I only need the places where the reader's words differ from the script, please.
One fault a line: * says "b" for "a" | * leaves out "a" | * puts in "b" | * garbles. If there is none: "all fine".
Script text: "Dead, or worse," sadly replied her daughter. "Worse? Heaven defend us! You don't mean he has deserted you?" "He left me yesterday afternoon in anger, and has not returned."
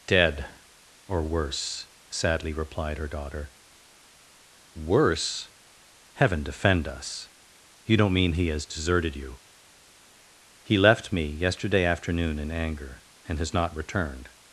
all fine